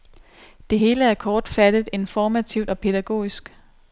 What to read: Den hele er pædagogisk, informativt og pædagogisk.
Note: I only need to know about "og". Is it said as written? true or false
true